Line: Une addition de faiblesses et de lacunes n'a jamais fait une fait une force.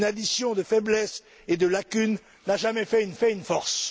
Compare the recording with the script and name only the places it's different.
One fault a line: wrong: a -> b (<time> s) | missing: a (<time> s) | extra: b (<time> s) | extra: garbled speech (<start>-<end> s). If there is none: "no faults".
no faults